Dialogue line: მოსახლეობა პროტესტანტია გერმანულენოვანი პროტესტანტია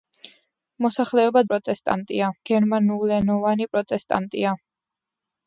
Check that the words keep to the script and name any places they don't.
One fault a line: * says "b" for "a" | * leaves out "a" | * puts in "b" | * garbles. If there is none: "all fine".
all fine